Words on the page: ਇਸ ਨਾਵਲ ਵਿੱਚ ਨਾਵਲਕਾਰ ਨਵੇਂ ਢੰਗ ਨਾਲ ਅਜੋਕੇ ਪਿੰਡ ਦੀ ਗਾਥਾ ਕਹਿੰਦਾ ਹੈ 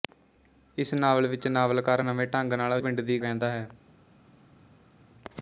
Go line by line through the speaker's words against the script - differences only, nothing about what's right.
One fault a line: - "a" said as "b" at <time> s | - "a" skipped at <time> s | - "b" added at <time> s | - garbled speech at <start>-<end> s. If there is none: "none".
- "ਅਜੋਕੇ" skipped at 2.8 s
- "ਗਾਥਾ" skipped at 3.2 s